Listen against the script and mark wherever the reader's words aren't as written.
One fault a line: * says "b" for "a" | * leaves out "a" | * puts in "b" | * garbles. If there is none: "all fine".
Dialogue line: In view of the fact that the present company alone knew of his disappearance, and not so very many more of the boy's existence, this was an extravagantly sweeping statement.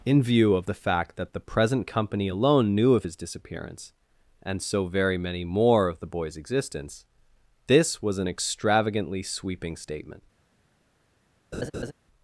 * leaves out "not"